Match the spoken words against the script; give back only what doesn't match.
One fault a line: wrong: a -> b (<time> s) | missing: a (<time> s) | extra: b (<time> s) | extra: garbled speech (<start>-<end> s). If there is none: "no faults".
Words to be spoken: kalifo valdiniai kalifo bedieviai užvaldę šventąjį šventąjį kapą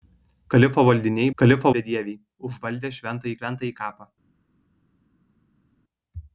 no faults